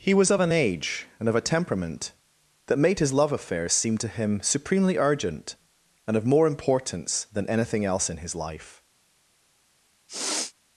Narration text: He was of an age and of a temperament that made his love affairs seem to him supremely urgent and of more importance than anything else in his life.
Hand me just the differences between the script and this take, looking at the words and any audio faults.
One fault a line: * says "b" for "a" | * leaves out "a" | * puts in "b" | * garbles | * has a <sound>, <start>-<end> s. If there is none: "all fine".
* has a sniff, 10.1-10.5 s